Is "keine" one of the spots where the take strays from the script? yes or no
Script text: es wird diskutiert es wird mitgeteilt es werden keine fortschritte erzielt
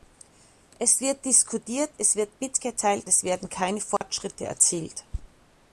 no